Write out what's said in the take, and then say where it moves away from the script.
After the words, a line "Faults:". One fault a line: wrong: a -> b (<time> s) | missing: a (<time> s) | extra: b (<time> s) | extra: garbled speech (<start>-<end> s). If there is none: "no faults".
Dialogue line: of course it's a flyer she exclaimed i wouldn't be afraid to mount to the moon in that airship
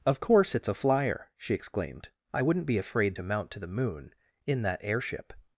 of course it's a flyer she exclaimed i wouldn't be afraid to mount to the moon in that airship
Faults:
no faults